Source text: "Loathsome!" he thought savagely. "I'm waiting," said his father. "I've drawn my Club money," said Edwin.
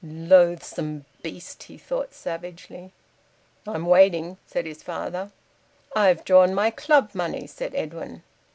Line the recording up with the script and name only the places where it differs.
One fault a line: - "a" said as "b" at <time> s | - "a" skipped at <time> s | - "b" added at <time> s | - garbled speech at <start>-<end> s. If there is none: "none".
- "beast" added at 1.2 s